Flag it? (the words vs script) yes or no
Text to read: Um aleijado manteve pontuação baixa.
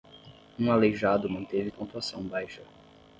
no